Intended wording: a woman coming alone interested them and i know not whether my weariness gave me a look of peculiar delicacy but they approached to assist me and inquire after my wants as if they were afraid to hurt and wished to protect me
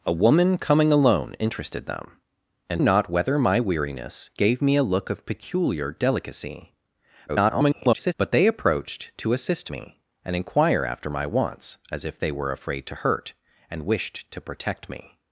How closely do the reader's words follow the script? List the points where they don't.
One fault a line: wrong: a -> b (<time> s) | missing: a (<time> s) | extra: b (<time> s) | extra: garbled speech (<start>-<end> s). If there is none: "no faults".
missing: i know (2.8 s)
extra: garbled speech (7.3-8.1 s)